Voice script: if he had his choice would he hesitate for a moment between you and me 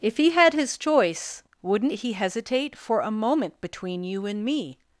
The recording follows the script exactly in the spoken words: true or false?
false